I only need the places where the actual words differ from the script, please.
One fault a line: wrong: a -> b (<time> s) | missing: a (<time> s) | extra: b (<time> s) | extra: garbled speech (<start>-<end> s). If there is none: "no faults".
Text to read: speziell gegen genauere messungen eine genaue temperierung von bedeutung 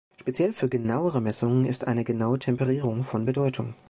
wrong: gegen -> für (0.5 s)
extra: ist (1.6 s)